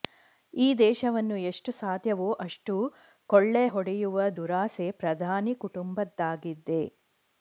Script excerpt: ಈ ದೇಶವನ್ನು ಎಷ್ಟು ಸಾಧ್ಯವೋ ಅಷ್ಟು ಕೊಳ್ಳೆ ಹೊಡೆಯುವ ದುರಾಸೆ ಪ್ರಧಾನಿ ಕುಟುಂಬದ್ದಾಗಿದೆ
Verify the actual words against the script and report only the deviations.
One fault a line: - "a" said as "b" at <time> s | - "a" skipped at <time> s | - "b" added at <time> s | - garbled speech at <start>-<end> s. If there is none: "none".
none